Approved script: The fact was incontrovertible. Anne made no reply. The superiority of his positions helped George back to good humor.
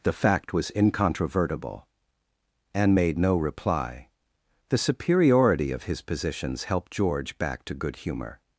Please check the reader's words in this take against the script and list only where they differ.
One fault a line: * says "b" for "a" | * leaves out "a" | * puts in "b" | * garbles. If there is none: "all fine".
all fine